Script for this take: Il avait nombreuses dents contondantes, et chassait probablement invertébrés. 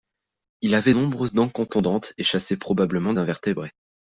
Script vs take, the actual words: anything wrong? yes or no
no